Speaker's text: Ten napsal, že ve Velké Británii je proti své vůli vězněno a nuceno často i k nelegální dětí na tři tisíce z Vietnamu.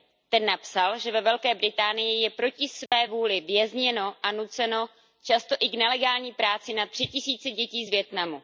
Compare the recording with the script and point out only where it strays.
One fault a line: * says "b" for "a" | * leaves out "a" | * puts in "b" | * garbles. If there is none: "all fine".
* says "práci" for "dětí"
* puts in "dětí"